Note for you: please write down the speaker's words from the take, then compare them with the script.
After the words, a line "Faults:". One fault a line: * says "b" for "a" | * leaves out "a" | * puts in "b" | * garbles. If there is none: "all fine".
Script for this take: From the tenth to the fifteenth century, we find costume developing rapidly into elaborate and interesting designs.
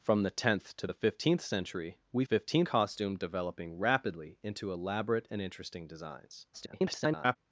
From the tenth to the fifteenth century, we fifteenth costume developing rapidly into elaborate and interesting designs. [garbled]
Faults:
* says "fifteenth" for "find"
* garbles